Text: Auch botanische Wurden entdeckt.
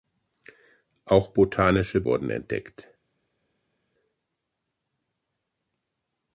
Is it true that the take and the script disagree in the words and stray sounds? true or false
false